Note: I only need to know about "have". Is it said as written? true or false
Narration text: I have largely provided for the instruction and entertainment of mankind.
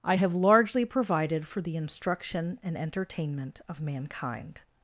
true